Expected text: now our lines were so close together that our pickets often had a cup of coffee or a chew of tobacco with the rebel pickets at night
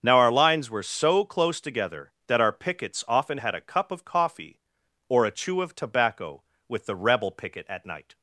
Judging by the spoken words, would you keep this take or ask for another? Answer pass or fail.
fail